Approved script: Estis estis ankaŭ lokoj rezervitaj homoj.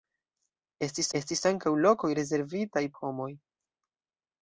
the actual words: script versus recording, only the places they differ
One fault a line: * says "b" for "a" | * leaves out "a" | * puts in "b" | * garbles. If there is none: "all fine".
all fine